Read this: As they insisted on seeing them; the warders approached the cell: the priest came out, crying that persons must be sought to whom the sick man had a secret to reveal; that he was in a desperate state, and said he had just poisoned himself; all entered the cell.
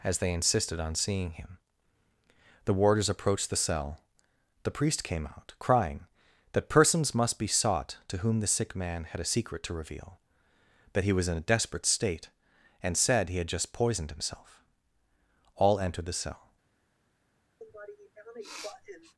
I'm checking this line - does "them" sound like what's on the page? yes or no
no